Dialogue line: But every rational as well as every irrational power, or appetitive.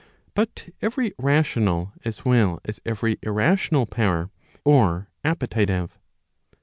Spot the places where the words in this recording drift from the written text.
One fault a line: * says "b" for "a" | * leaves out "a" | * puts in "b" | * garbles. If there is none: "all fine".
all fine